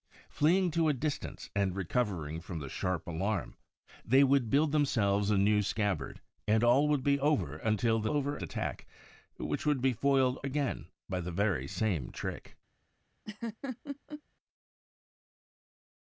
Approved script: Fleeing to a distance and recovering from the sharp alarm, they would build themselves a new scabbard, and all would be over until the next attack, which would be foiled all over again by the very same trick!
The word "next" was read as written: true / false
false